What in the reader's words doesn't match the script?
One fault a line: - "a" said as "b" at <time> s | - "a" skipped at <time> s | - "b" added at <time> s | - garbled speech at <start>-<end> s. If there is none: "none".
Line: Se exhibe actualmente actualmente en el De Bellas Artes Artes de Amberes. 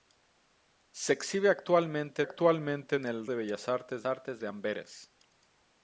none